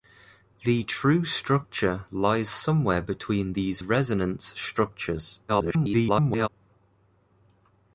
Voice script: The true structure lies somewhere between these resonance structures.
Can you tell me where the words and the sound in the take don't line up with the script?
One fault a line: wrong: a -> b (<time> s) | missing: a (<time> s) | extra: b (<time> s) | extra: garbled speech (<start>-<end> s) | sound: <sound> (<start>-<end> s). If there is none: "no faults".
extra: garbled speech (5.5-6.5 s)